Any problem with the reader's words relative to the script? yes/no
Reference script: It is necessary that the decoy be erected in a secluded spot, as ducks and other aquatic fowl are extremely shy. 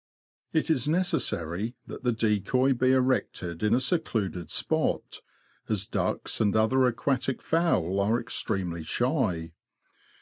no